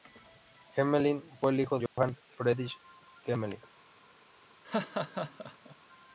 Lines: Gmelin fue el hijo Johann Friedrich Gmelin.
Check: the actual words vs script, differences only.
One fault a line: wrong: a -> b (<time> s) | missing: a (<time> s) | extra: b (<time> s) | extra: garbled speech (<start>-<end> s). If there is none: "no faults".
no faults